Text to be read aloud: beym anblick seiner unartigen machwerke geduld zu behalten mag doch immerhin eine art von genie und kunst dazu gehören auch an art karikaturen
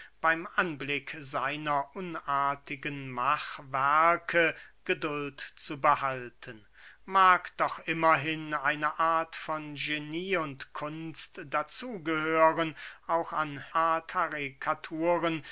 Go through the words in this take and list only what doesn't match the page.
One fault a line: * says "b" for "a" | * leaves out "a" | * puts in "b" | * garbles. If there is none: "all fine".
all fine